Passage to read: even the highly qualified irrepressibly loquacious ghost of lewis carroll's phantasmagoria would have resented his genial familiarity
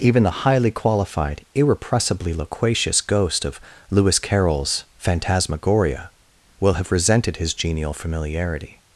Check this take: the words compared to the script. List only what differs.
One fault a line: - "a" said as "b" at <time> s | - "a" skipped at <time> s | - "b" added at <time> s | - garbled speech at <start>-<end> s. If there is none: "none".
- "would" said as "will" at 6.6 s